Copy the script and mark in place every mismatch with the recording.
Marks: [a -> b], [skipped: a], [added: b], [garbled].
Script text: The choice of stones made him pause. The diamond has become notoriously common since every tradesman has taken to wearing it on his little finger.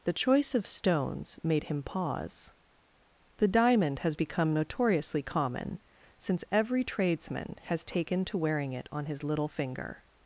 The choice of stones made him pause. The diamond has become notoriously common since every tradesman has taken to wearing it on his little finger.